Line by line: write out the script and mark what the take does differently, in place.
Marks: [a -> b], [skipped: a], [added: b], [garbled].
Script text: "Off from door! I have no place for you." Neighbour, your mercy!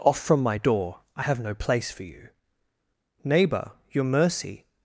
"Off from [added: my] door! I have no place for you." Neighbour, your mercy!